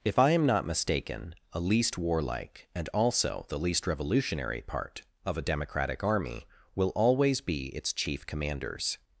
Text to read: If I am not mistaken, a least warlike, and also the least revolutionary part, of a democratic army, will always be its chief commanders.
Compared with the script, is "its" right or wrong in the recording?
right